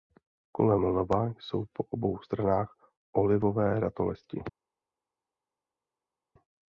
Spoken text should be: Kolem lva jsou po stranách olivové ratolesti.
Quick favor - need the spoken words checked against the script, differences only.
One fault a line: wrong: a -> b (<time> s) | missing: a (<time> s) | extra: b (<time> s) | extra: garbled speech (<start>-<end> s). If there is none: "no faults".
extra: obou (1.9 s)